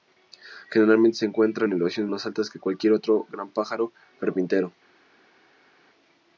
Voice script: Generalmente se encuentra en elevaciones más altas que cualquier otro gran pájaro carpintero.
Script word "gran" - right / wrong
right